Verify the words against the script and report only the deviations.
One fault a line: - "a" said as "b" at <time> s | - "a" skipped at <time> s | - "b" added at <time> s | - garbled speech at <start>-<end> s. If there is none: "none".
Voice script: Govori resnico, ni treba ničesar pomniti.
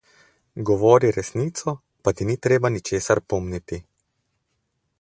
- "pa ti" added at 2.0 s